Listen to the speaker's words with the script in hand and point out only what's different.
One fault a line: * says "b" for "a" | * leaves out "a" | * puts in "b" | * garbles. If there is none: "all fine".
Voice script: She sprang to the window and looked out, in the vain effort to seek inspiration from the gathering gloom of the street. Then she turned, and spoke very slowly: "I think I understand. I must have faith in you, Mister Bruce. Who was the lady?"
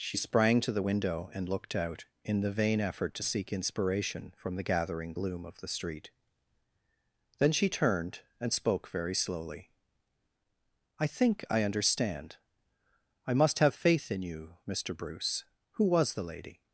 all fine